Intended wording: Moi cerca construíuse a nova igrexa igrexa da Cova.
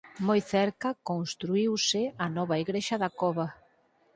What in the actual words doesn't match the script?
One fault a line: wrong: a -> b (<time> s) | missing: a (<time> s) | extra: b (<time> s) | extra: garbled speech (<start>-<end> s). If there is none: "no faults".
missing: igrexa (3.0 s)